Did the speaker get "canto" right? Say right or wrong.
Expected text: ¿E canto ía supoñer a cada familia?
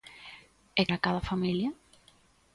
wrong